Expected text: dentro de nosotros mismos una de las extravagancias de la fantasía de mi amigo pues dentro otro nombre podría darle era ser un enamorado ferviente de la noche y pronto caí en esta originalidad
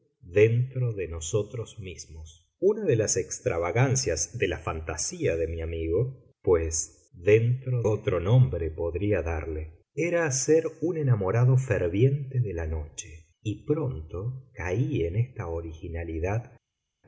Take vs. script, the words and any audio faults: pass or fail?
pass